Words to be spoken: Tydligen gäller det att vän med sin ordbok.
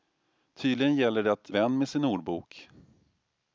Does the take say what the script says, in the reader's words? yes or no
yes